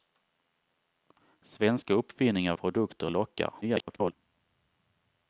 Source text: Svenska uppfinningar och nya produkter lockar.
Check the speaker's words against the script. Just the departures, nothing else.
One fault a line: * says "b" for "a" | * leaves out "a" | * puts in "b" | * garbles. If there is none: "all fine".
* leaves out "och nya"
* garbles